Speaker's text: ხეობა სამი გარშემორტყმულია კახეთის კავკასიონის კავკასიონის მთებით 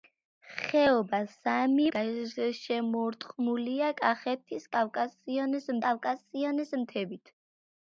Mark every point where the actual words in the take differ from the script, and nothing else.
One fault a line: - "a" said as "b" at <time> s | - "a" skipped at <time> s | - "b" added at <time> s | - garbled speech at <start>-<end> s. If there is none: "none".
none